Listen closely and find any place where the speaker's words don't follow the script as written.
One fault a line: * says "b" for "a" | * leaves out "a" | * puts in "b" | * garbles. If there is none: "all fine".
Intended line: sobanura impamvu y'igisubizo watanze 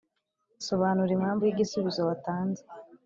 all fine